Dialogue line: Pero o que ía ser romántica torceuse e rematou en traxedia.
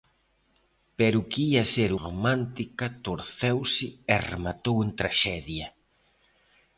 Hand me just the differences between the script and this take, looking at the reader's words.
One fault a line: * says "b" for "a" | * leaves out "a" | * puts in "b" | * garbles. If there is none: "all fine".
all fine